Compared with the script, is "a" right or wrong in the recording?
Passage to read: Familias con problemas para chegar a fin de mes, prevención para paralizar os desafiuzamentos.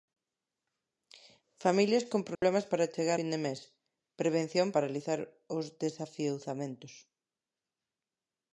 wrong